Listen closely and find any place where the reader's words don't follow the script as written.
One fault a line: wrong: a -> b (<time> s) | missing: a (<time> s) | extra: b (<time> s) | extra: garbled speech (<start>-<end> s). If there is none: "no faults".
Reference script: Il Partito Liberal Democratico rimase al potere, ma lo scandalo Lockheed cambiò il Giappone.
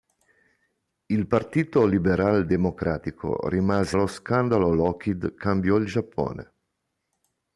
missing: al potere ma (4.0 s)